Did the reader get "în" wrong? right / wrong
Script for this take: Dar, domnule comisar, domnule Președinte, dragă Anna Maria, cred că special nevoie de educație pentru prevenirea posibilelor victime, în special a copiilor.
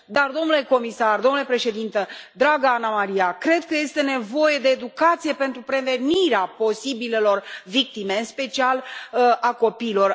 right